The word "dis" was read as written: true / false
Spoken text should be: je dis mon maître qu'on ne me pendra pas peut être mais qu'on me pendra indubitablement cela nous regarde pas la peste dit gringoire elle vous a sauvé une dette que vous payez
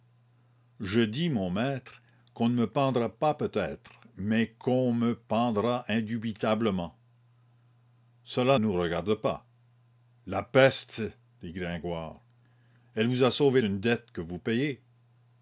true